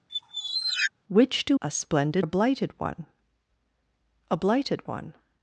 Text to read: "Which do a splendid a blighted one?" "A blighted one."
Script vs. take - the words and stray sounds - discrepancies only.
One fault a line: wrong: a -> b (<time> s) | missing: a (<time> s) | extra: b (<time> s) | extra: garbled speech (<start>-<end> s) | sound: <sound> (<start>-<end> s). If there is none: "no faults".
sound: squeak (0.1-0.9 s)